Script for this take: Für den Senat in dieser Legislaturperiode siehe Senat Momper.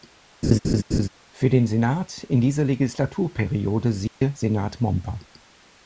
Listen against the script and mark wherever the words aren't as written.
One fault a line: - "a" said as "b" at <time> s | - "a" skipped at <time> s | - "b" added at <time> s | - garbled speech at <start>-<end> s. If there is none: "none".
none